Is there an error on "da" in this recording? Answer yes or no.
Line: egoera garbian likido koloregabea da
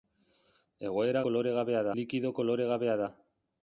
no